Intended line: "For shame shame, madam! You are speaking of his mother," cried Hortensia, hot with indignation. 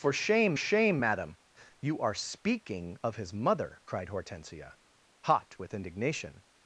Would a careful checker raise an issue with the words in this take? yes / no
no